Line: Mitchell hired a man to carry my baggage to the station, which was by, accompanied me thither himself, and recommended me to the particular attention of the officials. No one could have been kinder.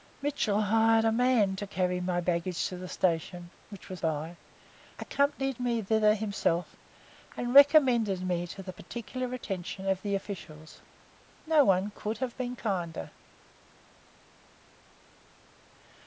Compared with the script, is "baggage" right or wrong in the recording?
right